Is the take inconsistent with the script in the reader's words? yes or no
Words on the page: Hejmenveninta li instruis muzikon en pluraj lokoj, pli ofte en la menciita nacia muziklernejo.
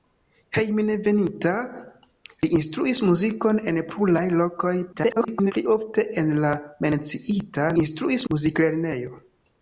yes